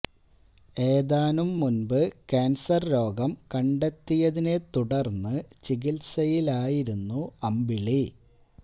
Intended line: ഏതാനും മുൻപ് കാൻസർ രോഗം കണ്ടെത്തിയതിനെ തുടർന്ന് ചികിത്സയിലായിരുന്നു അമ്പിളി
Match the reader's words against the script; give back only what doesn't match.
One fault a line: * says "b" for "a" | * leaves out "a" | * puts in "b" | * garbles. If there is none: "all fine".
all fine